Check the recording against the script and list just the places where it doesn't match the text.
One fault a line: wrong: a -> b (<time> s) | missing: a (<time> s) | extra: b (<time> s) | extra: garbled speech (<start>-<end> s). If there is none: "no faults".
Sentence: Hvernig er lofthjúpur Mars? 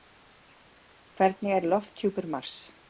no faults